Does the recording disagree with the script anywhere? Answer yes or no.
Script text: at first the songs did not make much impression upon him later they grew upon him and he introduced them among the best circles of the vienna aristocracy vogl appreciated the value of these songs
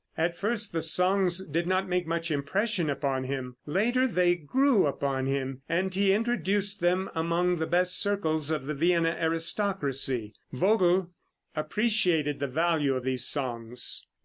no